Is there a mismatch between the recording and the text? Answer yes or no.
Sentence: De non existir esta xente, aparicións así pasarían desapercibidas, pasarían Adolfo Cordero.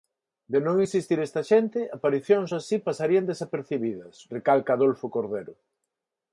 yes